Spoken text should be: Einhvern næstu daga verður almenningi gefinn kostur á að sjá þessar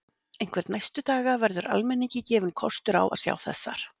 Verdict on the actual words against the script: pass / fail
pass